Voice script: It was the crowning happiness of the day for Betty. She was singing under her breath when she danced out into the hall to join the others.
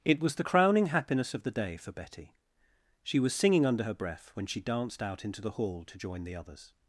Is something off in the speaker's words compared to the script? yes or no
no